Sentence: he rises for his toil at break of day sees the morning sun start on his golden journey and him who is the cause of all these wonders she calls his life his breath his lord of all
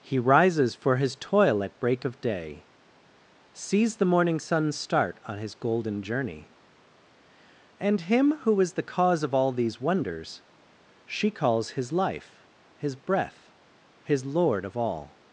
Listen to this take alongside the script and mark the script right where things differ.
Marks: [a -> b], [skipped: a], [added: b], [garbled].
he rises for his toil at break of day sees the morning sun start on his golden journey and him who is the cause of all these wonders she calls his life his breath his lord of all